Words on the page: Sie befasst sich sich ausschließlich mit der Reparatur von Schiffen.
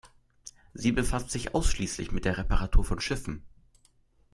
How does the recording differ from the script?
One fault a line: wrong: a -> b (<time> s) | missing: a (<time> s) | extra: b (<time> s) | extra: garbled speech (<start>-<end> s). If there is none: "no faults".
missing: sich (1.6 s)